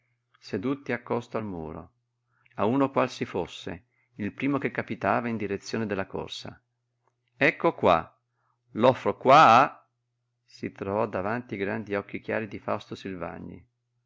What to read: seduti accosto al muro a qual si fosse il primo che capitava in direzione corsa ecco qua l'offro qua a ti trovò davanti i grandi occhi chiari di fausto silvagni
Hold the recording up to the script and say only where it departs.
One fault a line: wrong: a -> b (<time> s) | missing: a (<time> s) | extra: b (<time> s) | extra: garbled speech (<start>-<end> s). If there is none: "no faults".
extra: uno (2.6 s)
extra: della (5.9 s)
wrong: ti -> si (10.4 s)